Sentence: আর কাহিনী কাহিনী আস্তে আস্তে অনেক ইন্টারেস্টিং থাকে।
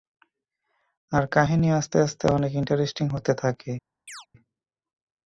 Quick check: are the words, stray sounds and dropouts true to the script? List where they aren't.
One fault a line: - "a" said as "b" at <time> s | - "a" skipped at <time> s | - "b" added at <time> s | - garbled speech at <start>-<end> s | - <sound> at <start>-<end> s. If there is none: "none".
- "কাহিনী" skipped at 1.7 s
- "হতে" added at 3.1 s
- chirp at 4.1-4.3 s